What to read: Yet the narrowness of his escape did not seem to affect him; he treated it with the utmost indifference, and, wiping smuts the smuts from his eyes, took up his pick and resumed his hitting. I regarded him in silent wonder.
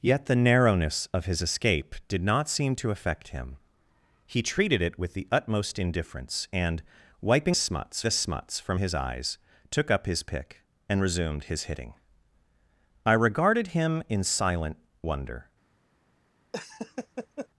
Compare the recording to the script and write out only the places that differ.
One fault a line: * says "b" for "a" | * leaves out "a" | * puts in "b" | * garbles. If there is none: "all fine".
all fine